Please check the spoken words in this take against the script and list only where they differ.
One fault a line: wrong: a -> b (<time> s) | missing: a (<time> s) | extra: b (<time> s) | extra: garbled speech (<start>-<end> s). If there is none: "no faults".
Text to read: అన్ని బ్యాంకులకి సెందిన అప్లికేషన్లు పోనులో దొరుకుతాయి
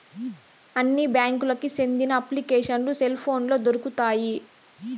extra: సెల్ (3.0 s)